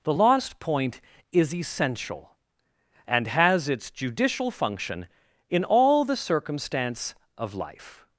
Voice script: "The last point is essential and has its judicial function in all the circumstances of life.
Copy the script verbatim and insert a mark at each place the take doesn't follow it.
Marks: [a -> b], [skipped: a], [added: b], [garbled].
"The [last -> lost] point is essential and has its judicial function in all the [circumstances -> circumstance] of life.